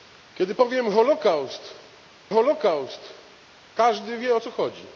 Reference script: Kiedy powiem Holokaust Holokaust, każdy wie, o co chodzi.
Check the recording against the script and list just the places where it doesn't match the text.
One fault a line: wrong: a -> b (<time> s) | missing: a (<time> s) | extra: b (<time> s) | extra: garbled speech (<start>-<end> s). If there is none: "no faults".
no faults